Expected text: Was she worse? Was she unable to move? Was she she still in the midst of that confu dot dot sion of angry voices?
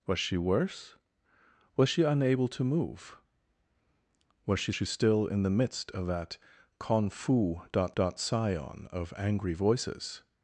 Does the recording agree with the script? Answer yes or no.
yes